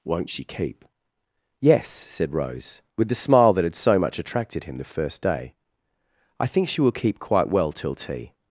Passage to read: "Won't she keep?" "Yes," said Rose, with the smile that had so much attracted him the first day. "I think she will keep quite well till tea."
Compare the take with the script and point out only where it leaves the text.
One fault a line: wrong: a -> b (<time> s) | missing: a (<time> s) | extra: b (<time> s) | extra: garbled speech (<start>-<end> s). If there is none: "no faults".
no faults